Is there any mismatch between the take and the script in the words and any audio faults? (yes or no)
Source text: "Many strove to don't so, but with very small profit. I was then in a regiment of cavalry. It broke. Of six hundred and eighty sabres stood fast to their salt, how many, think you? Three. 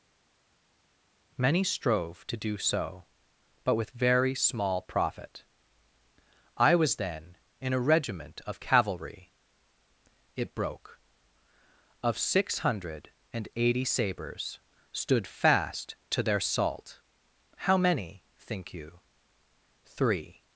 yes